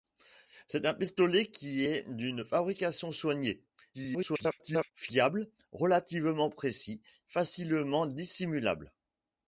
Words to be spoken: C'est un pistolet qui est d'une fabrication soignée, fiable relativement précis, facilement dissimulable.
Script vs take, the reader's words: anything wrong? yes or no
yes